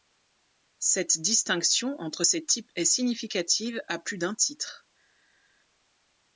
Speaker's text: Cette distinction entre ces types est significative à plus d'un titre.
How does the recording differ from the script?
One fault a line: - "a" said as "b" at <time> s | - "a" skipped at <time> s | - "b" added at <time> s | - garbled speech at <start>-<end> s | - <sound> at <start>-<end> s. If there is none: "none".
none